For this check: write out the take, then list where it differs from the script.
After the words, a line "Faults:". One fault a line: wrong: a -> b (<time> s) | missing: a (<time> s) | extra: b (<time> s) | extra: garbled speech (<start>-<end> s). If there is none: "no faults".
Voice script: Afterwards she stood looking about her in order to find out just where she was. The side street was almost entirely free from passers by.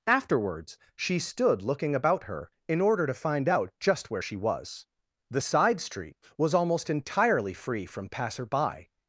Afterwards she stood looking about her in order to find out just where she was. The side street was almost entirely free from passer by.
Faults:
wrong: passers -> passer (8.1 s)